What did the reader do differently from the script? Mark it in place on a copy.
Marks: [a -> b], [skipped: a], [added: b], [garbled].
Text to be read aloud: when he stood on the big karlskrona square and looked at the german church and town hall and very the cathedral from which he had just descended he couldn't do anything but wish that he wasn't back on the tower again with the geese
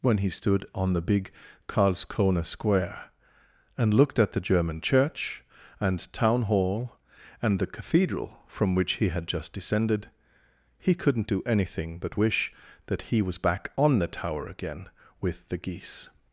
when he stood on the big karlskrona square and looked at the german church and town hall and [skipped: very] the cathedral from which he had just descended he couldn't do anything but wish that he [wasn't -> was] back on the tower again with the geese